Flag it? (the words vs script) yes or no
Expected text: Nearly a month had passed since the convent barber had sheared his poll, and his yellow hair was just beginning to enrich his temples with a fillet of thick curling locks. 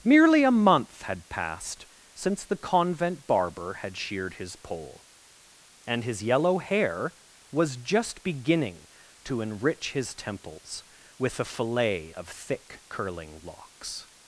yes